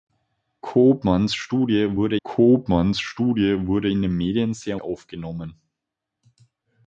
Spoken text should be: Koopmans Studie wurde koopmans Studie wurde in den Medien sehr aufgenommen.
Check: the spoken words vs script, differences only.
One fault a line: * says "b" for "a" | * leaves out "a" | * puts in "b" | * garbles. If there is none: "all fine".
all fine